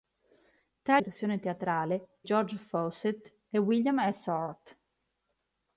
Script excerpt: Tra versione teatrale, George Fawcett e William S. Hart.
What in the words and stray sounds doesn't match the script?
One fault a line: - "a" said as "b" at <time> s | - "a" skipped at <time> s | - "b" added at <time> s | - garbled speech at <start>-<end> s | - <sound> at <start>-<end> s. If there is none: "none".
none